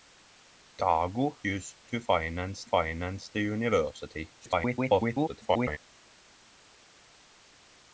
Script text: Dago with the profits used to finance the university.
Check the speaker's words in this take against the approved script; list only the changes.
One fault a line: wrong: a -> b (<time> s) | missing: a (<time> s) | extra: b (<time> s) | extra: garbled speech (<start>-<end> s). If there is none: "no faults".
missing: with the profits (1.4 s)
extra: finance (2.6 s)
extra: garbled speech (4.4-5.8 s)